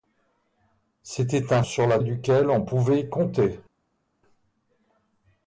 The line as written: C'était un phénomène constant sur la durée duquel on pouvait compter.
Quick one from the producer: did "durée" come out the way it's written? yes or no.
no